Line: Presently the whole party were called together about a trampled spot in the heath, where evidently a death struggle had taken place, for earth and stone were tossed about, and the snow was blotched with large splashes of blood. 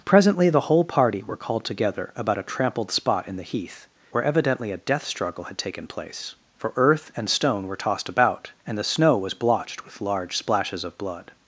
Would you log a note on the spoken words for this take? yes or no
no